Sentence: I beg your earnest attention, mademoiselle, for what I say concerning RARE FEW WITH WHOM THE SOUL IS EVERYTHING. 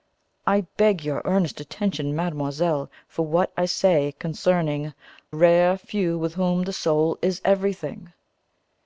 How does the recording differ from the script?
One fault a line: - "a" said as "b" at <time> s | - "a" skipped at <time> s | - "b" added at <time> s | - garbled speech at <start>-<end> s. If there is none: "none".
none